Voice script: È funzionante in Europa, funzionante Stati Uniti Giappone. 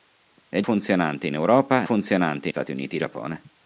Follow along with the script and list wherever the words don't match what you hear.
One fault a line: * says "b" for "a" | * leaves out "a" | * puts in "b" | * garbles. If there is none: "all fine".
all fine